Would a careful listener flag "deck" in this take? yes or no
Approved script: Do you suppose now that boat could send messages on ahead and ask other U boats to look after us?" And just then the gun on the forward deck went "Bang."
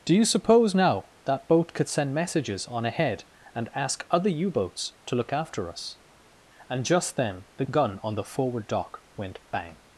yes